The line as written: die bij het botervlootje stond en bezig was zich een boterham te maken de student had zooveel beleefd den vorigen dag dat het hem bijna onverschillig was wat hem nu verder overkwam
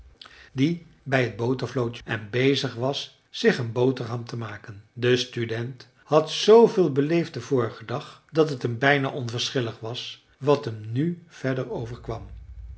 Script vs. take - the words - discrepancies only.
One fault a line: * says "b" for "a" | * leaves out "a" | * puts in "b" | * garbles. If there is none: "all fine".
* leaves out "stond"